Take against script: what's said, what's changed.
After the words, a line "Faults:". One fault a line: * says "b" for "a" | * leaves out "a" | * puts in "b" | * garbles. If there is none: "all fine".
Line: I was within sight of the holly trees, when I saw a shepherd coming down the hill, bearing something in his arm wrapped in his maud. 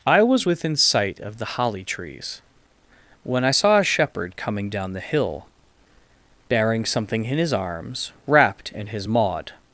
I was within sight of the holly trees, when I saw a shepherd coming down the hill, bearing something in his arms wrapped in his maud.
Faults:
* says "arms" for "arm"